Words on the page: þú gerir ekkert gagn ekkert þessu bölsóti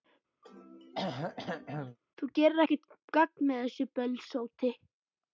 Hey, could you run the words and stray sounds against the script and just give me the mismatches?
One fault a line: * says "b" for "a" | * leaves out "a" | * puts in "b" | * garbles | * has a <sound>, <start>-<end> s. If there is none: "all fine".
* has a throat clearing, 0.4-2.0 s
* says "með" for "ekkert"